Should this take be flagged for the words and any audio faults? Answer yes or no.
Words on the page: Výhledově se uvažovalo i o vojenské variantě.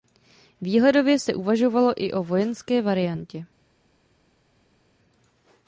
no